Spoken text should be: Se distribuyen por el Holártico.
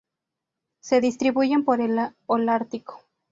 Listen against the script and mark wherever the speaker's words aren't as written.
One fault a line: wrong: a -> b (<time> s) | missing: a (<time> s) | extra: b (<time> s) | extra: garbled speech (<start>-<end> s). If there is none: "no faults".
no faults